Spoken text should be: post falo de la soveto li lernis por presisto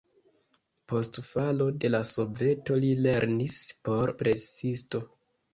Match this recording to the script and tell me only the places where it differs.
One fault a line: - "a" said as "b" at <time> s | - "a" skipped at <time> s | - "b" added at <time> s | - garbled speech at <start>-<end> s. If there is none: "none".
none